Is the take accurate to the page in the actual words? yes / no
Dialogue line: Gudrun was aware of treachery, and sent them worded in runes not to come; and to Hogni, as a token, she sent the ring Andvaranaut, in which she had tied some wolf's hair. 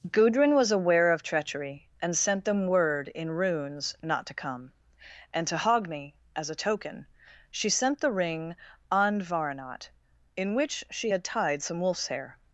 no